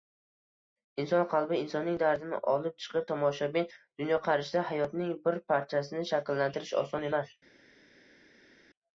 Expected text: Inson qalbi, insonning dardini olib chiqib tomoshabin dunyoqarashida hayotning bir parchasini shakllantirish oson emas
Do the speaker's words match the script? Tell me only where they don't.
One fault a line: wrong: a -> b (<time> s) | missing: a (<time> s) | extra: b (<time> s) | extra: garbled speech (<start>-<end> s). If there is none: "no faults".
no faults